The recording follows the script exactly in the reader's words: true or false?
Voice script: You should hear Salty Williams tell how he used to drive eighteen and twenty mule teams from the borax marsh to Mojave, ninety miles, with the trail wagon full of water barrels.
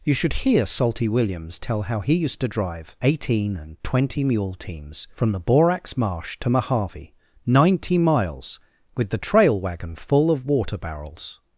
true